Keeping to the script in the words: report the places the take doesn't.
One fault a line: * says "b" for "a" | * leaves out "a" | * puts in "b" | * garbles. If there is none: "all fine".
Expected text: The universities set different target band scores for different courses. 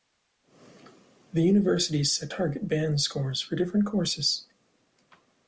* leaves out "different"